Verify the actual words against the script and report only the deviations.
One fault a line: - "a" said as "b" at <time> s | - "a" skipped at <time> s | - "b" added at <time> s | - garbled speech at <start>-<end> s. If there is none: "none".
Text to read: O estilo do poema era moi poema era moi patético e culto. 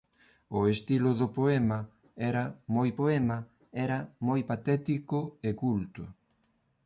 none